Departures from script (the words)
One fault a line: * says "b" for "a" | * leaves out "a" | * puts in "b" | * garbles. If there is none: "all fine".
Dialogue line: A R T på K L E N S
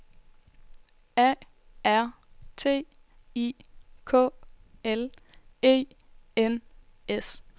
* says "I" for "på"